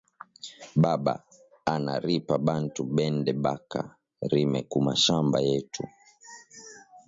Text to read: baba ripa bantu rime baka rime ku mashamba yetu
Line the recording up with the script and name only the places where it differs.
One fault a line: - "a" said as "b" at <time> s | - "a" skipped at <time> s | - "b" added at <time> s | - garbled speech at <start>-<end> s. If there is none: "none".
- "ana" added at 1.7 s
- "rime" said as "bende" at 3.0 s